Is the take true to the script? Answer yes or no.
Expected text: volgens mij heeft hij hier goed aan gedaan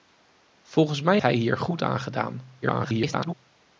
no